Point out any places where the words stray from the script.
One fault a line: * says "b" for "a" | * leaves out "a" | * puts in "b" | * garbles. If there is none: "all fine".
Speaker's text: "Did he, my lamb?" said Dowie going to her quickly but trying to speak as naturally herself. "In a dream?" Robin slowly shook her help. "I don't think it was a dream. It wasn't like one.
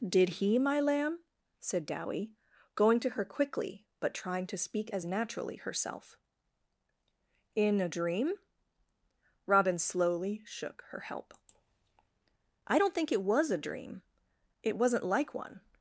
all fine